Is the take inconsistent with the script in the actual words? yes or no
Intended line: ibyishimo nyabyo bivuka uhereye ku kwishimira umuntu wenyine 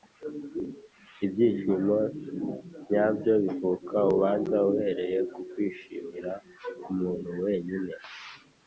yes